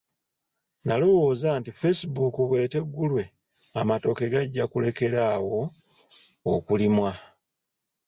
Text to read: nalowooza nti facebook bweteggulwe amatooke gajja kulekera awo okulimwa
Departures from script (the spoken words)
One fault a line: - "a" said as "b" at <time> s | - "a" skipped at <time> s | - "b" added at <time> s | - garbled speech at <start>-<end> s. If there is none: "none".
none